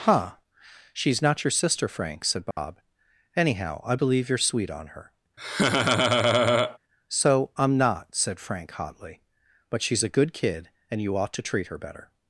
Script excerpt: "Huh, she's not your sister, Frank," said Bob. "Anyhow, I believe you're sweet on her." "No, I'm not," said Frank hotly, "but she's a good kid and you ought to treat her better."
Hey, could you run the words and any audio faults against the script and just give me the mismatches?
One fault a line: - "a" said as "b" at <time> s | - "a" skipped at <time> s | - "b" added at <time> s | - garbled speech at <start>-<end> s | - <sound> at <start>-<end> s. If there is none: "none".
- dropout at 2.5-2.6 s
- laugh at 5.4-6.8 s
- "No" said as "So" at 7.1 s